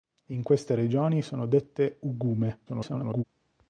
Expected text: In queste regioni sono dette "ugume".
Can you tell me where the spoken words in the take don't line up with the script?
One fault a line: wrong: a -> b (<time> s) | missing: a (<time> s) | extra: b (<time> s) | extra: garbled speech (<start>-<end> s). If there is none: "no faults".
extra: garbled speech (2.7-3.2 s)